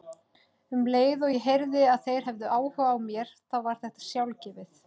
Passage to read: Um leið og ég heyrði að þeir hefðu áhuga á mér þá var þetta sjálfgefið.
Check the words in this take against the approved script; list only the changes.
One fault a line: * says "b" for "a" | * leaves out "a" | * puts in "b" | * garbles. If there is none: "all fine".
all fine